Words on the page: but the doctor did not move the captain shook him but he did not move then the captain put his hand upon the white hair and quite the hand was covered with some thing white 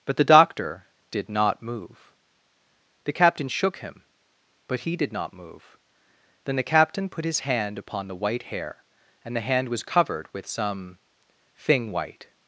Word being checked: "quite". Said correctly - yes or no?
no